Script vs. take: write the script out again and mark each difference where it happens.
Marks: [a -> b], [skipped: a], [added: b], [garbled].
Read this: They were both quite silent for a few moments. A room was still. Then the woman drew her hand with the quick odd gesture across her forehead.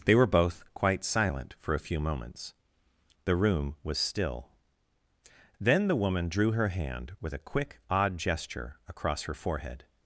They were both quite silent for a few moments. [A -> The] room was still. Then the woman drew her hand with [the -> a] quick odd gesture across her forehead.